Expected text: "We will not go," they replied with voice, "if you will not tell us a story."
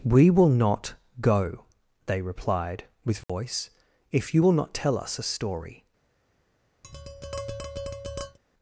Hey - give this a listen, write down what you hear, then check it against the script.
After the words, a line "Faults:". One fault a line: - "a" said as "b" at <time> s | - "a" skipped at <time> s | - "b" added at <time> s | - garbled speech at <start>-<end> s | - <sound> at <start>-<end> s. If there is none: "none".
"We will not go," they replied with voice, "if you will not tell us a story."
Faults:
- dropout at 3.2-3.3 s
- tap at 6.8-8.4 s